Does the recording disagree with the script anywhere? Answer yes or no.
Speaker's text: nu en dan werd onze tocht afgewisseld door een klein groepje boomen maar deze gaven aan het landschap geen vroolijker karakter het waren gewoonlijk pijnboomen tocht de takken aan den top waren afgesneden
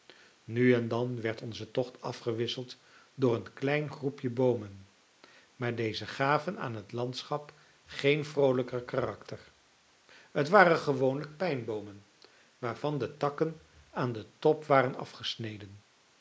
yes